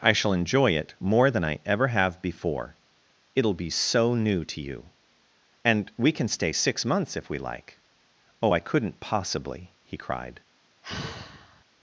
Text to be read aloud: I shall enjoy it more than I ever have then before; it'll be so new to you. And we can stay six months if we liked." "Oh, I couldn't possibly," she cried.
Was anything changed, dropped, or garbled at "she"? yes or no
yes